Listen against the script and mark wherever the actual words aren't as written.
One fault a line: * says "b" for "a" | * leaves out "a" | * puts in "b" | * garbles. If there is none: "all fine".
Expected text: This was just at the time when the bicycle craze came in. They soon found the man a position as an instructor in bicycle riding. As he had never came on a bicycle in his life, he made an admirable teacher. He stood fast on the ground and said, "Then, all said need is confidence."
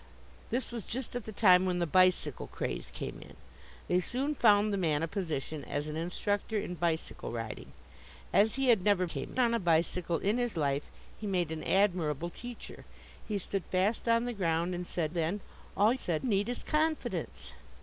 all fine